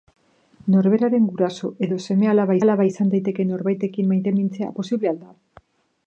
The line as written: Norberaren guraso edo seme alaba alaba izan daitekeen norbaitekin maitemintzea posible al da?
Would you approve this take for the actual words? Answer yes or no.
yes